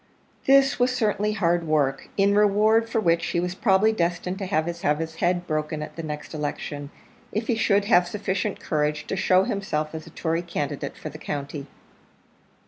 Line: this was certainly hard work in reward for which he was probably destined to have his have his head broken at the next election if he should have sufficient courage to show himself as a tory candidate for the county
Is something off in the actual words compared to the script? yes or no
no